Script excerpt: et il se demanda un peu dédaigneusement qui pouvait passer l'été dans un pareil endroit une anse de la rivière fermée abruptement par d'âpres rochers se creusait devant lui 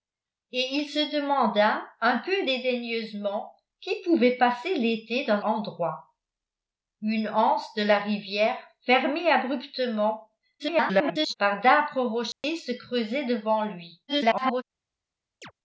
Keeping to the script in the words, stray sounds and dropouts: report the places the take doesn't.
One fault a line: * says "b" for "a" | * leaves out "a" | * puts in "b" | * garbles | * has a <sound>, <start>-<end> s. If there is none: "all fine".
* leaves out "un pareil"
* garbles
* has a dropout, 12.3-12.4 s
* garbles
* has a chirp, 15.4-15.5 s